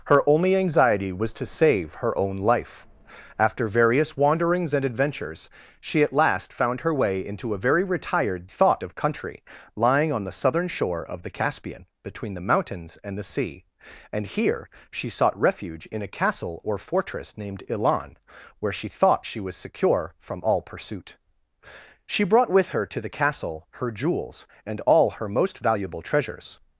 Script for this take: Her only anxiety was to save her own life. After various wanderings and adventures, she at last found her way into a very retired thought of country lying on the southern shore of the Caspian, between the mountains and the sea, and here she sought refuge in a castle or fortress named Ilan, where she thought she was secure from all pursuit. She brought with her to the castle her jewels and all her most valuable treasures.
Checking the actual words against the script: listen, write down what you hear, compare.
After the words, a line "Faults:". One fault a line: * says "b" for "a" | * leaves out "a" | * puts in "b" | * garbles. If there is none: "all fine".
Her only anxiety was to save her own life. After various wanderings and adventures, she at last found her way into a very retired thought of country lying on the southern shore of the Caspian, between the mountains and the sea, and here she sought refuge in a castle or fortress named Ilan, where she thought she was secure from all pursuit. She brought with her to the castle her jewels and all her most valuable treasures.
Faults:
all fine